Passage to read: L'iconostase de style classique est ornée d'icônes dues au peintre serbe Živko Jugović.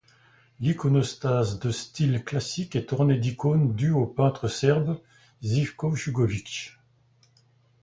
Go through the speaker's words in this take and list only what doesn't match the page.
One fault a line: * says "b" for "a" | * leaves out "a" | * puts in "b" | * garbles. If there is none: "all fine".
all fine